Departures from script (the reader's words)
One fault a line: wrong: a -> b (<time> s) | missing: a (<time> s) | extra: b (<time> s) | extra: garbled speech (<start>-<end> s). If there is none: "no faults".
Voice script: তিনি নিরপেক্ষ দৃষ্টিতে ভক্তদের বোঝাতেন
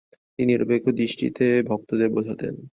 no faults